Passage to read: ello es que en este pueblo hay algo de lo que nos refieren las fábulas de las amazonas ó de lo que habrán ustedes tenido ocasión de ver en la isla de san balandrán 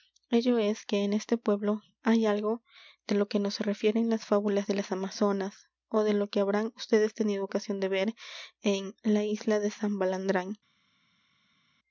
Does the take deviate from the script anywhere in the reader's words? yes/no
no